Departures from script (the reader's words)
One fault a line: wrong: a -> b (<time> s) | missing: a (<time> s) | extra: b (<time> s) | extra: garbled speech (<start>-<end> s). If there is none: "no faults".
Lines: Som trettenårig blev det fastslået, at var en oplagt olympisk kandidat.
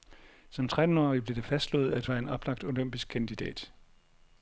no faults